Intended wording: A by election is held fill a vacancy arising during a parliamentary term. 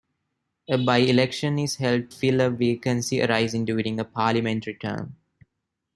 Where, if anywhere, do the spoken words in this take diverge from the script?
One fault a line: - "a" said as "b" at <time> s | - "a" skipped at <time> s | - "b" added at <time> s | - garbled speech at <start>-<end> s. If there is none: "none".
none